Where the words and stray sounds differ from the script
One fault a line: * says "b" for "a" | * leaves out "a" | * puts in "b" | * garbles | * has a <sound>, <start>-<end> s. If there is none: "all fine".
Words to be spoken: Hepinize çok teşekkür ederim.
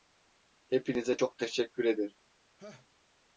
* has a laugh, 2.6-2.9 s